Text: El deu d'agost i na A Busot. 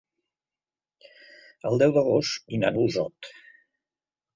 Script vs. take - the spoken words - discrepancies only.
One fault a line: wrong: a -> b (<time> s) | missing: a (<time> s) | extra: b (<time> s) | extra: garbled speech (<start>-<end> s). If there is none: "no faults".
no faults